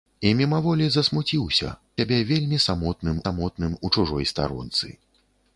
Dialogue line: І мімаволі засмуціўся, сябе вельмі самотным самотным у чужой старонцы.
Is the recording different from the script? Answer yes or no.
no